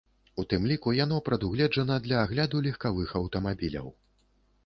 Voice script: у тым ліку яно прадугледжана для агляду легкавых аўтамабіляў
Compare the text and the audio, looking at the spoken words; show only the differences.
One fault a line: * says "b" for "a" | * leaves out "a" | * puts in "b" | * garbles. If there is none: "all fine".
all fine